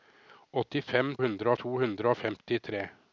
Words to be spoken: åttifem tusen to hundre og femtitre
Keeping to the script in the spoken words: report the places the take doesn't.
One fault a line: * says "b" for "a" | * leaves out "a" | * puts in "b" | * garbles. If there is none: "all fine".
* says "hundre" for "tusen"